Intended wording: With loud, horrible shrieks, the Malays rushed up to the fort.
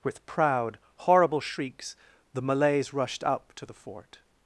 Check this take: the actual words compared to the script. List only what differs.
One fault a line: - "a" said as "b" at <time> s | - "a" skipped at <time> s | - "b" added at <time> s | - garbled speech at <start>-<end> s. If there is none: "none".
- "loud" said as "proud" at 0.2 s